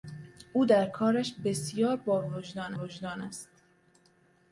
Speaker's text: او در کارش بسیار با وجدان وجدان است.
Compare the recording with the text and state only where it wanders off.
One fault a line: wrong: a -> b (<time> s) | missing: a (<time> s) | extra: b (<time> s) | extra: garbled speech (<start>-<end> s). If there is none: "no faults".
no faults